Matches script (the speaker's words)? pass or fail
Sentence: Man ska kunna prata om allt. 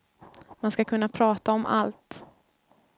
pass